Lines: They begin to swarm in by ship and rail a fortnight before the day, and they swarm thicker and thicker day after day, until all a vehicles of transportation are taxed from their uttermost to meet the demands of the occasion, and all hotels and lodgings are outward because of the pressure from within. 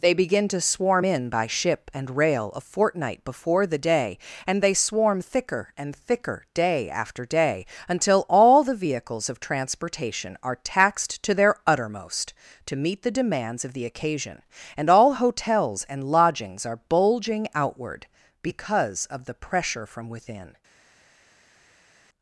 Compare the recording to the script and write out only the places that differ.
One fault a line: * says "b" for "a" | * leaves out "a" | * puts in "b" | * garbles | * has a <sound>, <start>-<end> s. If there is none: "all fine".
* says "the" for "a"
* says "to" for "from"
* puts in "bulging"